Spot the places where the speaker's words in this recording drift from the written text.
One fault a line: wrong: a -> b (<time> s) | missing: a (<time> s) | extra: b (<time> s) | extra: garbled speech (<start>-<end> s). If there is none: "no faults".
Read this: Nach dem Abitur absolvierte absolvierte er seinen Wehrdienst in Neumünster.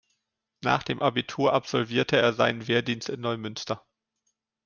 missing: absolvierte (2.2 s)